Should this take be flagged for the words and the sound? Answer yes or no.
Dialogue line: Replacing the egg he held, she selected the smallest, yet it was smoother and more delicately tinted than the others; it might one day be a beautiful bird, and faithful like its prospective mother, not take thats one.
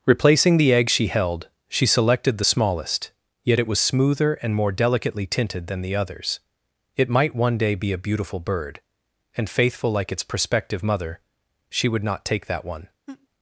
yes